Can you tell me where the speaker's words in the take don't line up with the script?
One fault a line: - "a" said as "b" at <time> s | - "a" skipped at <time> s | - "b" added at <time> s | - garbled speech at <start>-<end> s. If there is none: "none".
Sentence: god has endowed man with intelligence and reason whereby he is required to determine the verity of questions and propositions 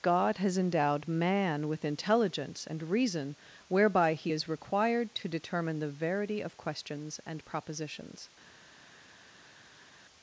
none